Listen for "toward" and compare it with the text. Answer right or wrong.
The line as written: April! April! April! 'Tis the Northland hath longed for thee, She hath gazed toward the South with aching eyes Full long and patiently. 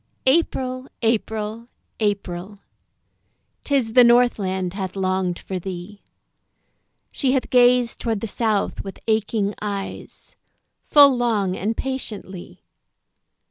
right